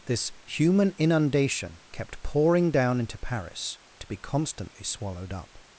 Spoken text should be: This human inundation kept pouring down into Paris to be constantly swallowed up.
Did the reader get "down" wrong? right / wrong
right